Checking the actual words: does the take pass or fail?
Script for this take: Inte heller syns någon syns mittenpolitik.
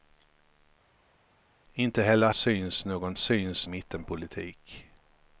pass